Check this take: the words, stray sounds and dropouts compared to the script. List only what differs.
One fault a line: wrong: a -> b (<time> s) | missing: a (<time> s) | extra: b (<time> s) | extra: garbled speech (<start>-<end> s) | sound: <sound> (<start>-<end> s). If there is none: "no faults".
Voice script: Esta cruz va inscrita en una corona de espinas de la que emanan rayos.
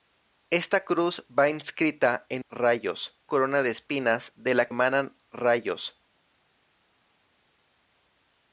wrong: una -> rayos (2.5 s)
missing: que (4.7 s)